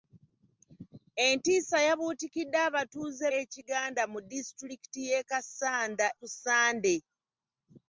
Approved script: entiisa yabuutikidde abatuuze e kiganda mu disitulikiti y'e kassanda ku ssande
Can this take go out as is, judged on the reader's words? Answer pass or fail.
pass